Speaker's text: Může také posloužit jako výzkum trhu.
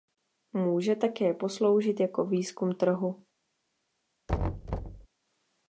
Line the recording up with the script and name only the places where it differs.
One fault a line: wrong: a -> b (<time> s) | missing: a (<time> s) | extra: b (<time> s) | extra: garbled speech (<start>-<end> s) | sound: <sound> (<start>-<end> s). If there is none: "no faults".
sound: thud (4.3-5.1 s)